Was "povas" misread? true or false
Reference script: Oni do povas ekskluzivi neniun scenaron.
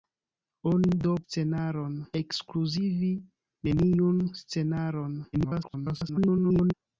true